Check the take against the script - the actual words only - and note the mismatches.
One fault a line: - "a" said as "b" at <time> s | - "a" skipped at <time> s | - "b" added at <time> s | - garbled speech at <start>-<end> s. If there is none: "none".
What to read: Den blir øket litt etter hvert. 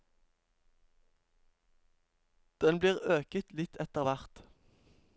none